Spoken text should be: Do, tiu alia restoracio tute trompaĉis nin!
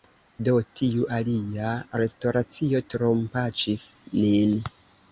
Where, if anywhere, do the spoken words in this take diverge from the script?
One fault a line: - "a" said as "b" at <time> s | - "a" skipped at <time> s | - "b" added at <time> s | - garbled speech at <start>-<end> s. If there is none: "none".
- "tute" skipped at 2.8 s